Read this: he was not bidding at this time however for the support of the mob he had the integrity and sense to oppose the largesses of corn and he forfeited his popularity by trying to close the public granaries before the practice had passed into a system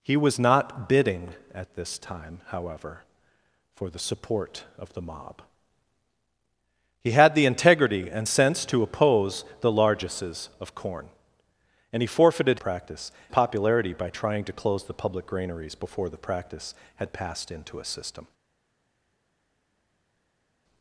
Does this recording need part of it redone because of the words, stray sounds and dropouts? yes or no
yes